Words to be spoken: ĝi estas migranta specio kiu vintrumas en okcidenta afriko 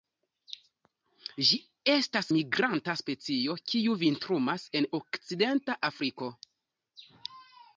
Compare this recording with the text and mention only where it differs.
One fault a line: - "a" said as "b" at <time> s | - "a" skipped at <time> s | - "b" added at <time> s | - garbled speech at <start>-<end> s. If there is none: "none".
none